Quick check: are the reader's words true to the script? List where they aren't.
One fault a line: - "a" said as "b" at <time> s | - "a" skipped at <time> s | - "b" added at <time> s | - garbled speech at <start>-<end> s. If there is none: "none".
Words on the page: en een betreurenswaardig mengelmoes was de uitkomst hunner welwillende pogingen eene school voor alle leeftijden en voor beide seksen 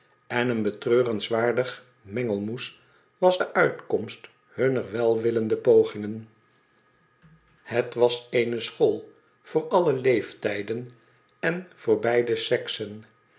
- "het was" added at 7.6 s